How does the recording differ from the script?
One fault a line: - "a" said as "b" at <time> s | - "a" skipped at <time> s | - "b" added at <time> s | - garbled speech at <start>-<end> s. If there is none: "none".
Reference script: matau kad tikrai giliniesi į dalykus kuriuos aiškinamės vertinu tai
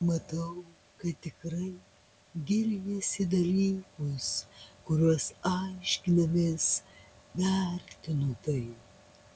none